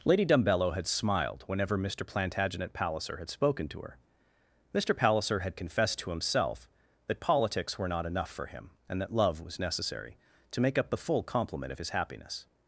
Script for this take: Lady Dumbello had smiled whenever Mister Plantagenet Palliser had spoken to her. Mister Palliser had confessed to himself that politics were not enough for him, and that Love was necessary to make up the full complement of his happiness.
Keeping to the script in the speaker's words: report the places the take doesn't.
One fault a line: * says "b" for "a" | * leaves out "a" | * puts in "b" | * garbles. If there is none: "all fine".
all fine